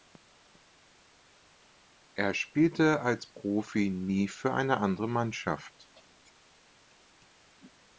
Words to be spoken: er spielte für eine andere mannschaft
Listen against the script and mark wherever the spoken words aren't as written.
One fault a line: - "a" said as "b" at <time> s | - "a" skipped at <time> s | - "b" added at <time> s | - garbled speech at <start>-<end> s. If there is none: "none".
- "als profi nie" added at 3.0 s